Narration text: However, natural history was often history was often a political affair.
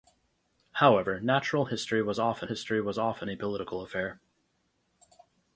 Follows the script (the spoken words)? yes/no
yes